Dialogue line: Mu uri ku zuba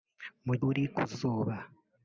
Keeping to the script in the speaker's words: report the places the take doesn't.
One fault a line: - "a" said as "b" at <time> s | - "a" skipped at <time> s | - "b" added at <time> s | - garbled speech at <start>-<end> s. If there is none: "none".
none